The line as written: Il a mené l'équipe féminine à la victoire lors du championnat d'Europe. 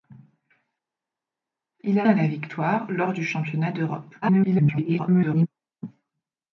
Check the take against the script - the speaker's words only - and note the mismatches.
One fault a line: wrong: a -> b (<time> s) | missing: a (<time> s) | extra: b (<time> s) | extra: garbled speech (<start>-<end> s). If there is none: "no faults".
missing: mené l'équipe féminine (2.1 s)
extra: garbled speech (4.2-5.5 s)